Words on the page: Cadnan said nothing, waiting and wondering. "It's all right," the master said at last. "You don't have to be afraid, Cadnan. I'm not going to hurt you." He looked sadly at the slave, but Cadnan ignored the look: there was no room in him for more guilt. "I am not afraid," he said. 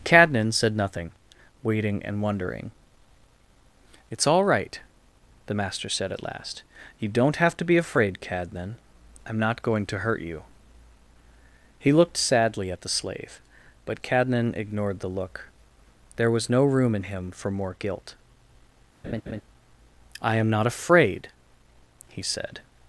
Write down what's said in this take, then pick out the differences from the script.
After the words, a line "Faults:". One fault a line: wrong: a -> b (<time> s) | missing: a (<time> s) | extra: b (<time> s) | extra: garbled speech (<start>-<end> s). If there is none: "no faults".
Cadnan said nothing, waiting and wondering. "It's all right," the master said at last. "You don't have to be afraid, Cadnan. I'm not going to hurt you." He looked sadly at the slave, but Cadnan ignored the look: there was no room in him for more guilt. "I am not afraid," he said.
Faults:
no faults